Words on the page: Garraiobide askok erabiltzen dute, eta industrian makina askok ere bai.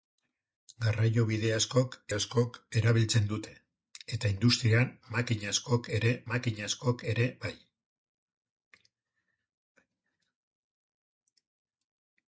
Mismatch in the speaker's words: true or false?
true